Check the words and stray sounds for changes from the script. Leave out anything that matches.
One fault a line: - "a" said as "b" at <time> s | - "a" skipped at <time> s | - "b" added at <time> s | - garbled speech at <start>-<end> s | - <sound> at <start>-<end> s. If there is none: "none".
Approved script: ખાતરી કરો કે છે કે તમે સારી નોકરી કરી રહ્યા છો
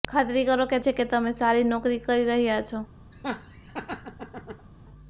- laugh at 3.1-4.7 s